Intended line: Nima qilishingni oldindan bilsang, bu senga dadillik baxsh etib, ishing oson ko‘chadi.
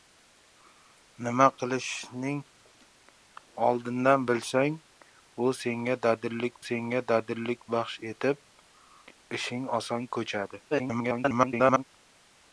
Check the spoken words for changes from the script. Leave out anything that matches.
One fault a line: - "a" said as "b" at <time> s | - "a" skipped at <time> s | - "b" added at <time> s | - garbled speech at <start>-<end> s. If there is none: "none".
- "senga dadillik" added at 6.7 s
- garbled speech at 10.7-11.8 s